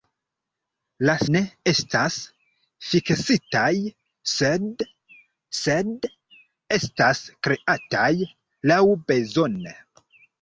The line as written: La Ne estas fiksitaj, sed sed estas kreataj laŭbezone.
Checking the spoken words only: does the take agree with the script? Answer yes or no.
yes